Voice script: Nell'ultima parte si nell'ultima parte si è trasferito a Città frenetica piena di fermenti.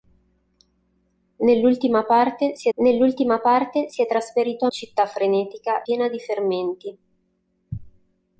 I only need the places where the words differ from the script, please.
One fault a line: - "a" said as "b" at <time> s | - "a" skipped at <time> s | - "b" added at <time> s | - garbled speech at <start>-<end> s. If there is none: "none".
none